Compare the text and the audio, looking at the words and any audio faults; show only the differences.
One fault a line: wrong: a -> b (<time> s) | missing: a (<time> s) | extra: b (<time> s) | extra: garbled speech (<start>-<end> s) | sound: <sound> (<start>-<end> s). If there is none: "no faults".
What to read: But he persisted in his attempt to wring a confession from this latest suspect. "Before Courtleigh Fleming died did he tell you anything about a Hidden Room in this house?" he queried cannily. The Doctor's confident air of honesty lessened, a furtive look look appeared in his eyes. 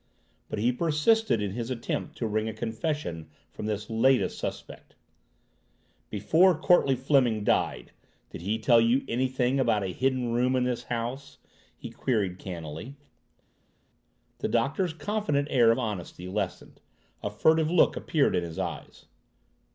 missing: look (17.9 s)